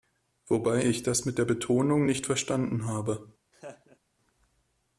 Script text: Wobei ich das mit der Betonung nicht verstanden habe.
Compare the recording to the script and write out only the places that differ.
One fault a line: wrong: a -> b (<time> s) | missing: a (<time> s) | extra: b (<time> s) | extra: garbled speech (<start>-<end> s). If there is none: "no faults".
no faults